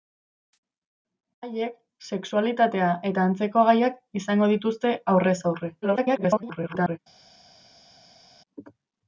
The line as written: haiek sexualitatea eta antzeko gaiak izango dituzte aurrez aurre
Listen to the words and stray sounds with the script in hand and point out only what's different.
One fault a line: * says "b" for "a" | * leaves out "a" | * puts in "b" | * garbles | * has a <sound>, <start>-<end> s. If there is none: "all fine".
* garbles